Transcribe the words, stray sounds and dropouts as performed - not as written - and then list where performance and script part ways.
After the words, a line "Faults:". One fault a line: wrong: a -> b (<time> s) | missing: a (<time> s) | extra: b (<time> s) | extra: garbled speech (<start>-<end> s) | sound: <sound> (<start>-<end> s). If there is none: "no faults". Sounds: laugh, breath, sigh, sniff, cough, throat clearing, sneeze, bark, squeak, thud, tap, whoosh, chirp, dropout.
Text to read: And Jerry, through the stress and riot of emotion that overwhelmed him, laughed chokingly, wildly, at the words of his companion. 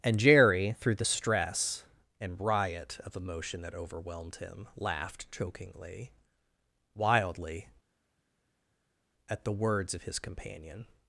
And Jerry, through the stress and riot of emotion that overwhelmed him, laughed chokingly, wildly, at the words of his companion.
Faults:
no faults